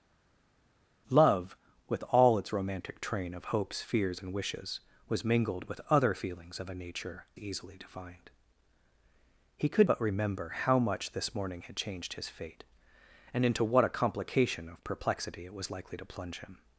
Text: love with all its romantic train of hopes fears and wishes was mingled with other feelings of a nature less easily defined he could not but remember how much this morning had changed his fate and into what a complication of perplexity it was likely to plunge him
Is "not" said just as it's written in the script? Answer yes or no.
no